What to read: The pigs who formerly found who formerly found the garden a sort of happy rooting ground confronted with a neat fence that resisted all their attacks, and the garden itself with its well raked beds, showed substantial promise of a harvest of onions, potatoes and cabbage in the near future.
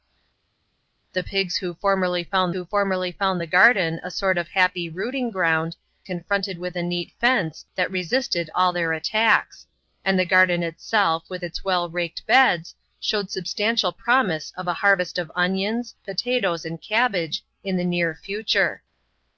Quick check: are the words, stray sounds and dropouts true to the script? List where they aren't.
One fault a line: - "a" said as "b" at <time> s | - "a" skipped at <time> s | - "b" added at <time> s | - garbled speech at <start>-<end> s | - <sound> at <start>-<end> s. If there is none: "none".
none